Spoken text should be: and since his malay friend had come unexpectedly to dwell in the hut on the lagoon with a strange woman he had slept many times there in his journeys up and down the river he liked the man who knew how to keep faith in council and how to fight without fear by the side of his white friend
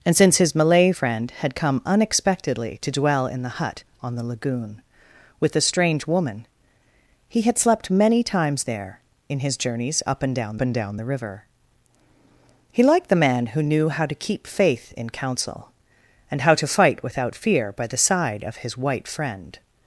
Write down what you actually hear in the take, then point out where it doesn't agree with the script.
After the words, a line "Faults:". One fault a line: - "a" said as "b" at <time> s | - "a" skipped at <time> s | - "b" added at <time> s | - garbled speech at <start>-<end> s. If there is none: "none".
and since his malay friend had come unexpectedly to dwell in the hut on the lagoon with a strange woman he had slept many times there in his journeys up and down and down the river he liked the man who knew how to keep faith in council and how to fight without fear by the side of his white friend
Faults:
- "and down" added at 10.6 s